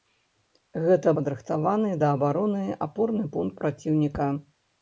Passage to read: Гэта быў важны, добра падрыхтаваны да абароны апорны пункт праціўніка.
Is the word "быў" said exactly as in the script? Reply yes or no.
no